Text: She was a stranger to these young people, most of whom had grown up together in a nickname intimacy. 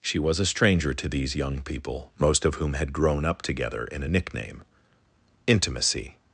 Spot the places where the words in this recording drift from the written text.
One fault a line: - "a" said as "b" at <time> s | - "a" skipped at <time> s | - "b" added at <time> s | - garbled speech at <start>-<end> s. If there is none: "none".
none